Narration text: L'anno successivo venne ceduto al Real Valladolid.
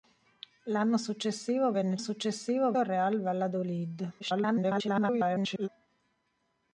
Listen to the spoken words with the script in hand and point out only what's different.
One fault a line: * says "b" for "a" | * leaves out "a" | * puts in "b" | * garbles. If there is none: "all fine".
* says "successivo" for "ceduto"
* garbles